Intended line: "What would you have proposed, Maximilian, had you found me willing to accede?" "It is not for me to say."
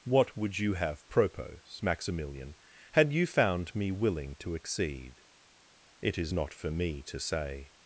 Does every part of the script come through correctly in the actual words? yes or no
no